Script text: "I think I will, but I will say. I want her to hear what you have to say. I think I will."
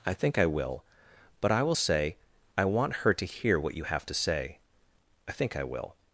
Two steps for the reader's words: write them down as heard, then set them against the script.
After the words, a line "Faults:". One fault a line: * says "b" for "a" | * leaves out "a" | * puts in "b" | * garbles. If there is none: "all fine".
"I think I will, but I will say. I want her to hear what you have to say. I think I will."
Faults:
all fine